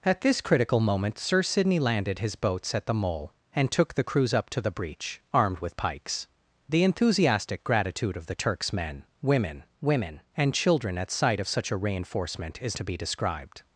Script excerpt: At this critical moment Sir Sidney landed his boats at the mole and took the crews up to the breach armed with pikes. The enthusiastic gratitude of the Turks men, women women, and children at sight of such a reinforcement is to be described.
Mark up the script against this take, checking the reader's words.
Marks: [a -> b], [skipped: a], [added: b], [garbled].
At this critical moment Sir Sidney landed his boats at the mole and took the crews up to the breach armed with pikes. The enthusiastic gratitude of the Turks men, women women, and children at sight of such a reinforcement is to be described.